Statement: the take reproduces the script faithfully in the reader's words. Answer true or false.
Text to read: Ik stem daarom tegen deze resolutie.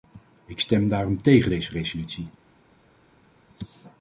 true